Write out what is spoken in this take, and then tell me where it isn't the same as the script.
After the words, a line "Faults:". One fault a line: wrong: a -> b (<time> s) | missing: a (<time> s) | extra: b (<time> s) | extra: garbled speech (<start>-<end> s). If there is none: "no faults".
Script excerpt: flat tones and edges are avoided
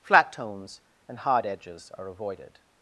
flat tones and hard edges are avoided
Faults:
extra: hard (1.2 s)